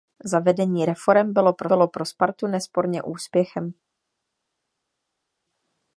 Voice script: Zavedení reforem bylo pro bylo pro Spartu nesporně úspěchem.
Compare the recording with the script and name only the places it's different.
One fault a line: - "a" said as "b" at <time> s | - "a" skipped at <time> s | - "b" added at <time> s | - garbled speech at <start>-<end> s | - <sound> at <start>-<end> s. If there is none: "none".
none